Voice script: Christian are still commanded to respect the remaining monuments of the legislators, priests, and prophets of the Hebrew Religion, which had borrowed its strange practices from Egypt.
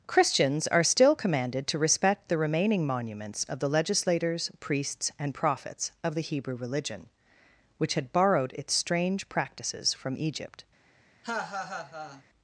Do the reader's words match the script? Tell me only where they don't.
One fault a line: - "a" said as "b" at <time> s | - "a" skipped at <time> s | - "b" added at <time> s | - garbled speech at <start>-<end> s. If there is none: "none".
- "Christian" said as "Christians" at 0.1 s